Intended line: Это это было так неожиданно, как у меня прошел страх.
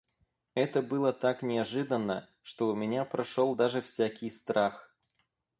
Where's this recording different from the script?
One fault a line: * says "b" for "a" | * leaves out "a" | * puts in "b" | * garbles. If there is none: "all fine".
* leaves out "это"
* says "что" for "как"
* puts in "даже всякий"